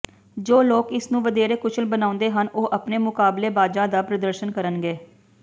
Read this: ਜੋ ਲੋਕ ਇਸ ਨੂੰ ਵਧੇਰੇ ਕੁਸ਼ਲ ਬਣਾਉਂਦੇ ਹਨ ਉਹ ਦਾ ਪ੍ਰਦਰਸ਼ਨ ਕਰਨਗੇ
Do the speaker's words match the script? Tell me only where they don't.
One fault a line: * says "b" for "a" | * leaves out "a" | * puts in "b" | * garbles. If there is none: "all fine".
* puts in "ਆਪਣੇ ਮੁਕਾਬਲੇਬਾਜ਼ਾਂ"